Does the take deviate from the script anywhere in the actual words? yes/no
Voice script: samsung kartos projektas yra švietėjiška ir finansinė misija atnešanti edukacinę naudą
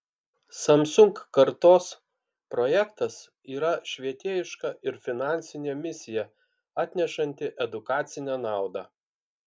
no